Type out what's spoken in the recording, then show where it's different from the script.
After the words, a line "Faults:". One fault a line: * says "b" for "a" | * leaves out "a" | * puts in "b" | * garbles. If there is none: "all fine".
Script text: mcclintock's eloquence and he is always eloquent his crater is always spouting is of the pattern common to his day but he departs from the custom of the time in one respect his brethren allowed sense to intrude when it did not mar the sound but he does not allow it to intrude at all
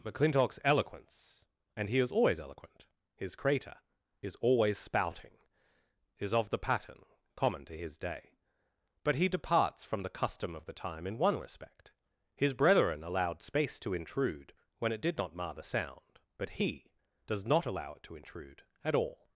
mcclintock's eloquence and he is always eloquent his crater is always spouting is of the pattern common to his day but he departs from the custom of the time in one respect his brethren allowed space to intrude when it did not mar the sound but he does not allow it to intrude at all
Faults:
* says "space" for "sense"